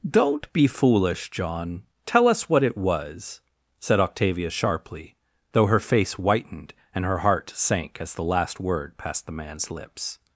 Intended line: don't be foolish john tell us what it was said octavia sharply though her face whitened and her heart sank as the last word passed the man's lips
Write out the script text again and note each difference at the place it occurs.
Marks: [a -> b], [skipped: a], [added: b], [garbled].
don't be foolish john tell us what it was said octavia sharply though her face whitened and her heart sank as the last word passed the man's lips